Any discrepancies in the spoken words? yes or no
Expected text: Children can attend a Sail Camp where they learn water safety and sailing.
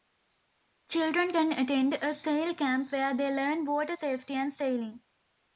no